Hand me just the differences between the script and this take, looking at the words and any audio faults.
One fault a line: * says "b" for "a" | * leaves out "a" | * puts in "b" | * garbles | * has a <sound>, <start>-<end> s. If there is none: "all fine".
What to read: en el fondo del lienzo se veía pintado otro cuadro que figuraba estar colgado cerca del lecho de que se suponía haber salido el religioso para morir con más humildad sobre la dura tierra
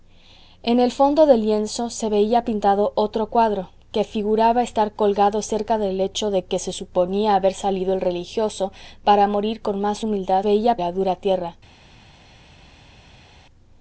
* says "veía" for "sobre"